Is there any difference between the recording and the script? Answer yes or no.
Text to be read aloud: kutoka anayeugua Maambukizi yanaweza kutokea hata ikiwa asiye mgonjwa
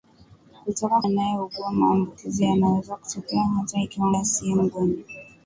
no